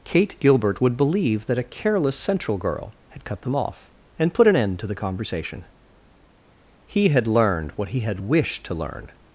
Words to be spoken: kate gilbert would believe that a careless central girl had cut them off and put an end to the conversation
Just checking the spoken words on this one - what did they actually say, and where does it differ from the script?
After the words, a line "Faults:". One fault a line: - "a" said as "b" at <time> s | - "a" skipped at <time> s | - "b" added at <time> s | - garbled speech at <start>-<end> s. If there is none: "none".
kate gilbert would believe that a careless central girl had cut them off and put an end to the conversation he had learned what he had wished to learn
Faults:
- "he had learned what he had wished to learn" added at 6.8 s